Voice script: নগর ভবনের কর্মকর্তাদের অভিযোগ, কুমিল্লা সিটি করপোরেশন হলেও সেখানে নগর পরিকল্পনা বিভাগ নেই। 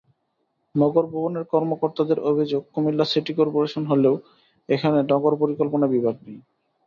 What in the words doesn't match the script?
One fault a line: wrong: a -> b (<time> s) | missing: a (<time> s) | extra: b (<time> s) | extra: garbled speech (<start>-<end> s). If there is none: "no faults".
wrong: সেখানে -> এখানে (4.7 s)